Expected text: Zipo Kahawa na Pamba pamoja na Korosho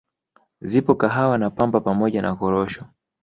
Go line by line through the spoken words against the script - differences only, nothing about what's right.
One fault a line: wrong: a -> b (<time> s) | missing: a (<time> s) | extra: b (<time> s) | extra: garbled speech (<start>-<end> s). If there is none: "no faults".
no faults